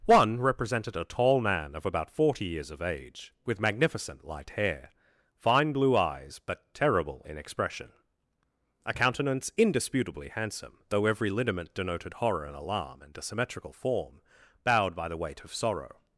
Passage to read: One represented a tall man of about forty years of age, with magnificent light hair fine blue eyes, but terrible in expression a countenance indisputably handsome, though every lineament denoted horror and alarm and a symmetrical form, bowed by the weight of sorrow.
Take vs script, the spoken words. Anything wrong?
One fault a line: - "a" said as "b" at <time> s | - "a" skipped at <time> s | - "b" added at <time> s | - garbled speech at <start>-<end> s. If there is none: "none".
none